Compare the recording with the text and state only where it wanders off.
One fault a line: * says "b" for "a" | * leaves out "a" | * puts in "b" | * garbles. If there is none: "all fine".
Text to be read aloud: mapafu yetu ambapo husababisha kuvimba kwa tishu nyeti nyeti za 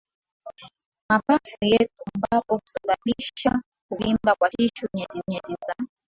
all fine